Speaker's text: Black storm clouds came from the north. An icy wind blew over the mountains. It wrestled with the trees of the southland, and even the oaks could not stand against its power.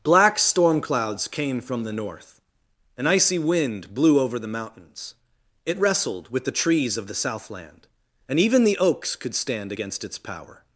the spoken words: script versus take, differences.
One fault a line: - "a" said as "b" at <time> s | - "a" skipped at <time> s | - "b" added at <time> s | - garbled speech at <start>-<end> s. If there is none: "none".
- "not" skipped at 9.4 s